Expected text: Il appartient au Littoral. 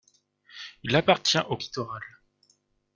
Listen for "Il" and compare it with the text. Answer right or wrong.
right